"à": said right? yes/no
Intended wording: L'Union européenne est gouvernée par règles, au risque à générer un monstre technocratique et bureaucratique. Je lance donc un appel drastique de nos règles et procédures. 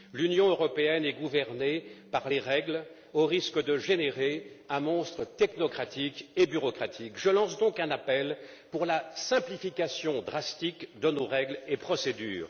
no